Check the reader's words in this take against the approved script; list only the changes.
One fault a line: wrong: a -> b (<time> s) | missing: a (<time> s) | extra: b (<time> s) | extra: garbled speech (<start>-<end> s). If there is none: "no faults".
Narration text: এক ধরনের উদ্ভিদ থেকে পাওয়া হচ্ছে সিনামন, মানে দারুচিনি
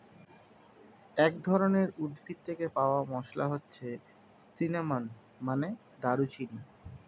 extra: মসলা (3.1 s)